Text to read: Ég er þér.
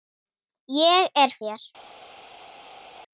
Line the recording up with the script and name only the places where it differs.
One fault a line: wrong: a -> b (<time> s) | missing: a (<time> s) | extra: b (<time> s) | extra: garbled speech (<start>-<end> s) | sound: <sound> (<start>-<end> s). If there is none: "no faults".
no faults